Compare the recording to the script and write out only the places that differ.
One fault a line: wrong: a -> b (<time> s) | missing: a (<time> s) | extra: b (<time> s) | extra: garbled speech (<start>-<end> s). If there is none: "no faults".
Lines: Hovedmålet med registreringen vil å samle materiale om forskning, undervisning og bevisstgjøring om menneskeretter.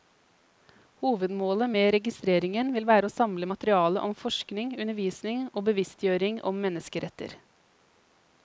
extra: være (2.9 s)